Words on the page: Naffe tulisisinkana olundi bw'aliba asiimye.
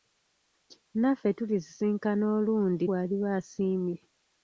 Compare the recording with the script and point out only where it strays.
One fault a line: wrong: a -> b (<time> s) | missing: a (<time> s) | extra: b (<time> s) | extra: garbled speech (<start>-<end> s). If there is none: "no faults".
no faults